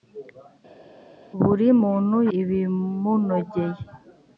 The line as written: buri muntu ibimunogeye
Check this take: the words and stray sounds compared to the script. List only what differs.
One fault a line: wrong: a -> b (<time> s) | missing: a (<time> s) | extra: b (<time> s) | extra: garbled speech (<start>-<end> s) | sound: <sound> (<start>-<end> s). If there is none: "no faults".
no faults